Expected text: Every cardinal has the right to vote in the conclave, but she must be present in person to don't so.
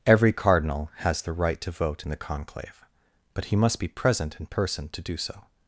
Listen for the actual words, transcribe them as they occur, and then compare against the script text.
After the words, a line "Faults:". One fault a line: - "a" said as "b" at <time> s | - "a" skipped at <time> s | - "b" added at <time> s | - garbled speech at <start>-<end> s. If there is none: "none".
Every cardinal has the right to vote in the conclave, but he must be present in person to do so.
Faults:
- "she" said as "he" at 3.4 s
- "don't" said as "do" at 5.0 s